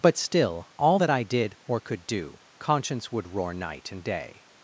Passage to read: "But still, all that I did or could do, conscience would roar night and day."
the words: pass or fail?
pass